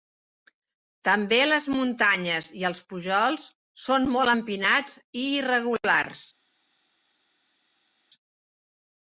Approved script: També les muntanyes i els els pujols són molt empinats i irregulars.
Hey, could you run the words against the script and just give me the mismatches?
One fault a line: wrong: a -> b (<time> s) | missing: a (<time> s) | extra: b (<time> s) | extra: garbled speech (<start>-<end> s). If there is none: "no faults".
missing: els (2.8 s)